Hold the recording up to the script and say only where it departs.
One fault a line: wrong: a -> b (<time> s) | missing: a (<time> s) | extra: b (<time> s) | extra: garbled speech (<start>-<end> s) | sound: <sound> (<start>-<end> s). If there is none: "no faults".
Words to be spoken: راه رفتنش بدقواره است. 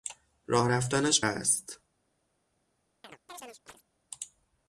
missing: بدقواره (1.2 s)
sound: chirp (3.0-3.8 s)